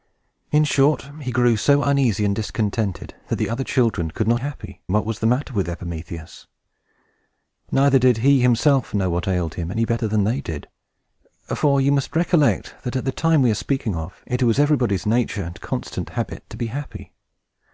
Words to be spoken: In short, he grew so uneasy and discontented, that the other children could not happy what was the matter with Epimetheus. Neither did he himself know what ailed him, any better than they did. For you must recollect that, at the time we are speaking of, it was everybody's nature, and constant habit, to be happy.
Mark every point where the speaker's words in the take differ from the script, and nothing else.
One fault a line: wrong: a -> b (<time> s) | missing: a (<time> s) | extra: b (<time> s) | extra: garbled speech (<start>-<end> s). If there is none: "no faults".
no faults